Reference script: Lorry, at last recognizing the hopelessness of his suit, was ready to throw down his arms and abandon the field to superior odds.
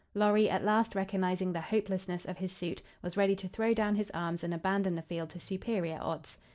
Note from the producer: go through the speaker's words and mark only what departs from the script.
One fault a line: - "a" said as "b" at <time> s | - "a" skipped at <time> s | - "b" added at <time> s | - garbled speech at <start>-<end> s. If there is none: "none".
none